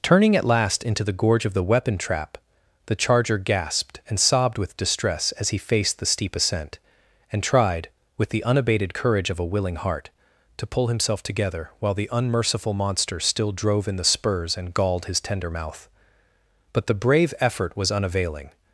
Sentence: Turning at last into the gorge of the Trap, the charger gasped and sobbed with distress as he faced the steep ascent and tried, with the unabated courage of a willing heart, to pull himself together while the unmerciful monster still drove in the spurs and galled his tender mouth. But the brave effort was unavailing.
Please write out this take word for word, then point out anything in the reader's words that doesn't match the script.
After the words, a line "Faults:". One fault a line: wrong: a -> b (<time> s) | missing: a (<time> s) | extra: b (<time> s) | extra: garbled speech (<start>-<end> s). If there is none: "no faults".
Turning at last into the gorge of the weapon Trap, the charger gasped and sobbed with distress as he faced the steep ascent and tried, with the unabated courage of a willing heart, to pull himself together while the unmerciful monster still drove in the spurs and galled his tender mouth. But the brave effort was unavailing.
Faults:
extra: weapon (1.6 s)